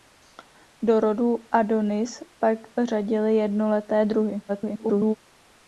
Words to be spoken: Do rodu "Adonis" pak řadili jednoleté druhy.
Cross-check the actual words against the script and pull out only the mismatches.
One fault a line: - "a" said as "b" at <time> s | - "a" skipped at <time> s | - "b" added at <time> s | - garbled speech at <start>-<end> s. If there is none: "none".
- garbled speech at 4.5-5.2 s